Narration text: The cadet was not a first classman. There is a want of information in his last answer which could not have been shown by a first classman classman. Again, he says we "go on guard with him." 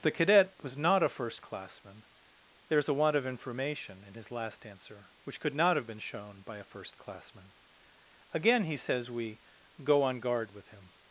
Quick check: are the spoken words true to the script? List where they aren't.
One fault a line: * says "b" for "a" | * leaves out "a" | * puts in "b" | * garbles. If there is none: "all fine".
* leaves out "classman"